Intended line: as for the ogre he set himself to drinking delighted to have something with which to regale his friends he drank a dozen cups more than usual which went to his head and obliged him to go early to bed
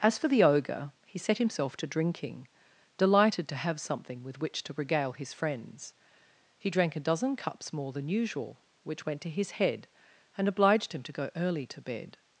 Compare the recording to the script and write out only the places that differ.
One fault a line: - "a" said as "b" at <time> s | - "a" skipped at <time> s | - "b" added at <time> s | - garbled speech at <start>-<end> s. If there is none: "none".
none